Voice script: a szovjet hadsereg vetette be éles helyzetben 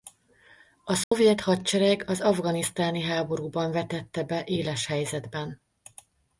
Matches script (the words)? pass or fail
fail